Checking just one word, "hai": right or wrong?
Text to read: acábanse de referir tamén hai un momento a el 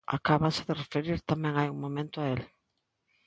right